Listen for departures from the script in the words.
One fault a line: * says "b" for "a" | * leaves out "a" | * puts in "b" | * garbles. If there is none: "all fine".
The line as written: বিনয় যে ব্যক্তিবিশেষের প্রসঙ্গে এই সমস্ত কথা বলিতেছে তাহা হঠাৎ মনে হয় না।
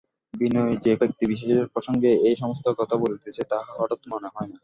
all fine